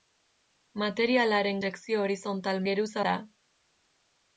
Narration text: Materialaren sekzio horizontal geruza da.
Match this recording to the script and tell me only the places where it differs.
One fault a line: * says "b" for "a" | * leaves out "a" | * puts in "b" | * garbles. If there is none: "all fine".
all fine